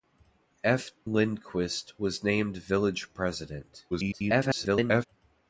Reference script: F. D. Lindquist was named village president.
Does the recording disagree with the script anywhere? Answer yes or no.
yes